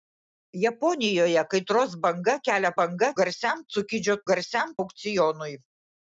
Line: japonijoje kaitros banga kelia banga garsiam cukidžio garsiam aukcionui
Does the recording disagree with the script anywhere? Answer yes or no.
no